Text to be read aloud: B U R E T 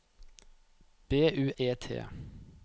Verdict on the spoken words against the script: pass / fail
fail